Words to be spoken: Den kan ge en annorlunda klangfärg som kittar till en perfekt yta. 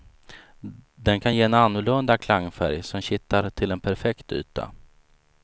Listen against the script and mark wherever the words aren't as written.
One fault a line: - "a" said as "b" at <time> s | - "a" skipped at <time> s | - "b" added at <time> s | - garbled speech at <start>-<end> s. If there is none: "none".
none